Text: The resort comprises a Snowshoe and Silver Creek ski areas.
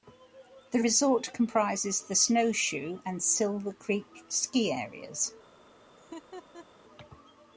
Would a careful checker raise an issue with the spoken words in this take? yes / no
yes